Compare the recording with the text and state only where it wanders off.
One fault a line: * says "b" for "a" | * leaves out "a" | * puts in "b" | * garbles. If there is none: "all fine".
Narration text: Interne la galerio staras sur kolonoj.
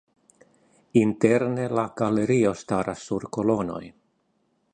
all fine